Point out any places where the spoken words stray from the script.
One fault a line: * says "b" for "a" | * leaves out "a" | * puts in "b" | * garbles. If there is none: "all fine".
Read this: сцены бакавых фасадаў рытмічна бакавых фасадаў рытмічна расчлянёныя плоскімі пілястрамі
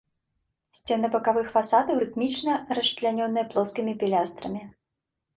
* leaves out "бакавых фасадаў рытмічна"